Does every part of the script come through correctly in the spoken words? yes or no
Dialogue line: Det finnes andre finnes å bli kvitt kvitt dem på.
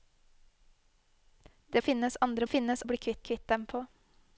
yes